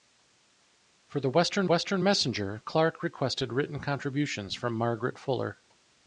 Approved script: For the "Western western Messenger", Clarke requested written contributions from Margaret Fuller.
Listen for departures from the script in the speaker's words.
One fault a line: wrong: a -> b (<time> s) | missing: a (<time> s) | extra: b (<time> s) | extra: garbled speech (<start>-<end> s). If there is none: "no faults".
no faults